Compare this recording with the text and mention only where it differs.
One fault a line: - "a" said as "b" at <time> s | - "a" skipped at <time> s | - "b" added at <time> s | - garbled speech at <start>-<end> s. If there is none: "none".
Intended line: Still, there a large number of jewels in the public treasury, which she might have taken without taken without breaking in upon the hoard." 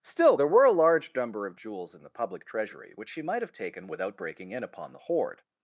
- "were" added at 0.5 s
- "taken without" skipped at 4.2 s